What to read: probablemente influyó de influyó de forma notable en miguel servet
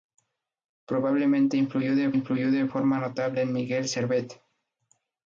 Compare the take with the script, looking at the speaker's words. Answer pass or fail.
pass